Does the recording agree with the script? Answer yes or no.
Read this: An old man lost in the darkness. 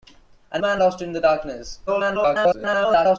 no